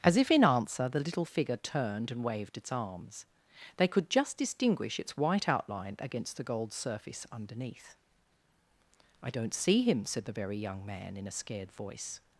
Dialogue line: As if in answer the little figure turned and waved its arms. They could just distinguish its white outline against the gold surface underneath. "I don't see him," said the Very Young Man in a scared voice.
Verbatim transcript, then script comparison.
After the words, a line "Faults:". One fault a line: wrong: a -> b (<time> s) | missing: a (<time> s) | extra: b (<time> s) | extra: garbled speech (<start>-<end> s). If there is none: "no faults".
As if in answer the little figure turned and waved its arms. They could just distinguish its white outline against the gold surface underneath. "I don't see him," said the Very Young Man in a scared voice.
Faults:
no faults